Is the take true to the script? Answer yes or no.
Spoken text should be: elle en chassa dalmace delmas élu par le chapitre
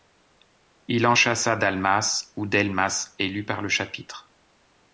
no